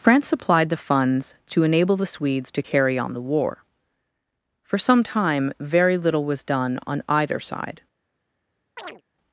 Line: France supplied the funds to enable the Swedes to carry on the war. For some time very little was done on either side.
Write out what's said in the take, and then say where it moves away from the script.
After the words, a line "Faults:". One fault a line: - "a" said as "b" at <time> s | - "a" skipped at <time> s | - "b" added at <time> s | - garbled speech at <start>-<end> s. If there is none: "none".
France supplied the funds to enable the Swedes to carry on the war. For some time very little was done on either side.
Faults:
none